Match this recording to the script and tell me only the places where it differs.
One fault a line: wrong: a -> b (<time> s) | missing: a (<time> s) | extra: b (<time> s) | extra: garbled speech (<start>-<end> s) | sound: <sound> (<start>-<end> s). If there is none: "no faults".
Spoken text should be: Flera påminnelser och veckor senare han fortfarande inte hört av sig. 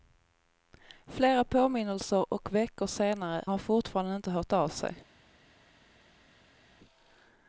no faults